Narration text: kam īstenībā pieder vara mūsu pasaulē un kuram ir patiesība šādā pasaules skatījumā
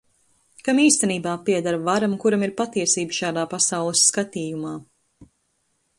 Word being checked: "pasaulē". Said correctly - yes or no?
no